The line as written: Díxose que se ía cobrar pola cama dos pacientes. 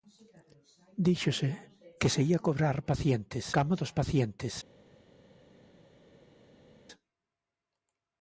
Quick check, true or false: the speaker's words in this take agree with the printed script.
false